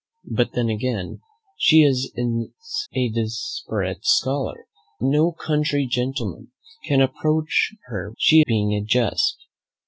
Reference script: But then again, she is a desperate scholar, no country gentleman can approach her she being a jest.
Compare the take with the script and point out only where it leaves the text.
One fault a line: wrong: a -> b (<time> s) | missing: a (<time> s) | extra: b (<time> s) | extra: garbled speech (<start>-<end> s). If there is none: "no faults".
no faults